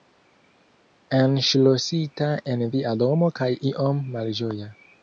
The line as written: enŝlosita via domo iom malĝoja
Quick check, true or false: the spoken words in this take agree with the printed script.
false